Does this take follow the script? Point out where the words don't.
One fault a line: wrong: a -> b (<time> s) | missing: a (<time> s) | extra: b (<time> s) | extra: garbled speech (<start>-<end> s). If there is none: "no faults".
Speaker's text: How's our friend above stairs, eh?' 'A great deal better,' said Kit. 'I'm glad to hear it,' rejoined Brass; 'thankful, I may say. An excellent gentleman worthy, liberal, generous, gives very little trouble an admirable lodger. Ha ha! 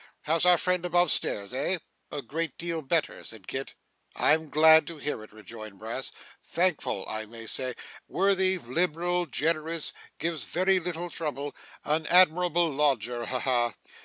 missing: An excellent gentleman (7.8 s)